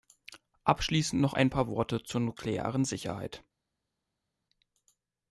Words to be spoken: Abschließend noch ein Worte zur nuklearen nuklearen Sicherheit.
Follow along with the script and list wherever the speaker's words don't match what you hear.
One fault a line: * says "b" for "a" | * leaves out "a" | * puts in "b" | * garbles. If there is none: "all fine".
* puts in "paar"
* leaves out "nuklearen"